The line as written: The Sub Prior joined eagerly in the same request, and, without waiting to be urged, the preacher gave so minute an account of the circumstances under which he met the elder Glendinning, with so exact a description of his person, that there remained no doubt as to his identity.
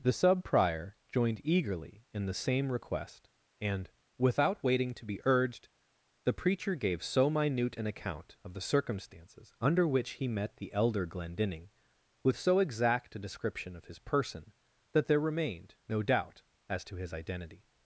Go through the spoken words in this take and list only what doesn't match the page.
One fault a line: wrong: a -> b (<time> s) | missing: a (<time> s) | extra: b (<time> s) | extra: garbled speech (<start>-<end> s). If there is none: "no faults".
no faults